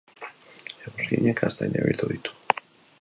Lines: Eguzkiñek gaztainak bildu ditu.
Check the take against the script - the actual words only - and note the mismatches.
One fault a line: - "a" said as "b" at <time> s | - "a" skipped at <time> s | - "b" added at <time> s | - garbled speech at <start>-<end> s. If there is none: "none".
none